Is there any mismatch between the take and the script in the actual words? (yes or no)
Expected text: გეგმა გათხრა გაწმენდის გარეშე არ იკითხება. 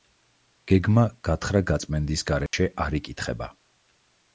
no